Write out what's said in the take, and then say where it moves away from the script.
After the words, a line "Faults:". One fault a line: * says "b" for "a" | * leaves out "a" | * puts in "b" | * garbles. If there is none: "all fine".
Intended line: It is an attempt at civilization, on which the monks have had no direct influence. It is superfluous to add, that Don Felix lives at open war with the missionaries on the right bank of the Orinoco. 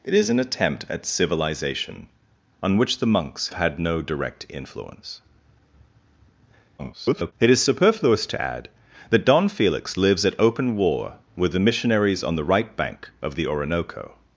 It is an attempt at civilization, on which the monks had no direct influence. [garbled] It is superfluous to add, that Don Felix lives at open war with the missionaries on the right bank of the Orinoco.
Faults:
* leaves out "have"
* garbles